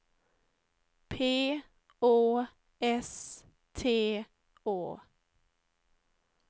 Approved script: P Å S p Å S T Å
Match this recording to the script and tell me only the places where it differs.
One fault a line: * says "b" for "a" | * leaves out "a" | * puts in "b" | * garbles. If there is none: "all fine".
* leaves out "p Å S"